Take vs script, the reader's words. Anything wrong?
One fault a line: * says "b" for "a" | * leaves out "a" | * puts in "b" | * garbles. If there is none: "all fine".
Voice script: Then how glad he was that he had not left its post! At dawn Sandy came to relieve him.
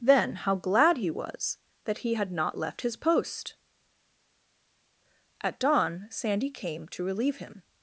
* says "his" for "its"